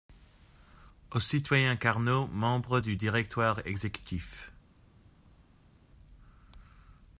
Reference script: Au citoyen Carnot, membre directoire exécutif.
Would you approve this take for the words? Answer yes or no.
no